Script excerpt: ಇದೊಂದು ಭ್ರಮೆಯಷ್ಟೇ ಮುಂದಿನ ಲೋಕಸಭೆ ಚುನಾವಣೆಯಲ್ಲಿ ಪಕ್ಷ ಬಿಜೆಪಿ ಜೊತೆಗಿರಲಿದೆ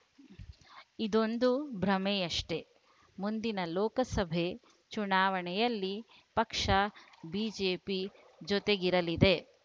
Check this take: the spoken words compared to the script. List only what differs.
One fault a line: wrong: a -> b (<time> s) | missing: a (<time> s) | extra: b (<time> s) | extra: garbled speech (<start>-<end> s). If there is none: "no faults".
no faults